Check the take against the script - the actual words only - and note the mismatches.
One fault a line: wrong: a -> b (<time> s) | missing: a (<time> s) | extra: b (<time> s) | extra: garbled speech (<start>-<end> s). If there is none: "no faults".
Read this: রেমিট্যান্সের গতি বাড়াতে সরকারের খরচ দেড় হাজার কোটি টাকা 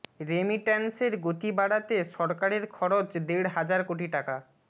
no faults